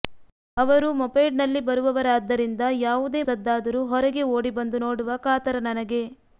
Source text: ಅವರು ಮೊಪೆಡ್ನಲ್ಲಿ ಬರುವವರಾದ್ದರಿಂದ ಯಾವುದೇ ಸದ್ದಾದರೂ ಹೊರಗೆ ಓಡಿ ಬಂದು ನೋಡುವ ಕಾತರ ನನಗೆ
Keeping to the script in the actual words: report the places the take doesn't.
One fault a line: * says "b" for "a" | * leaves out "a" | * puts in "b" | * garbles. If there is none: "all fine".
all fine